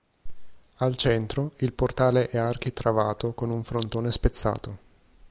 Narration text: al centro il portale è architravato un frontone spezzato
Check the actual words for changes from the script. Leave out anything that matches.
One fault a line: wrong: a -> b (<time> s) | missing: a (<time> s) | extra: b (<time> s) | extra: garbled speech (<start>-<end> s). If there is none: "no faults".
extra: con (3.3 s)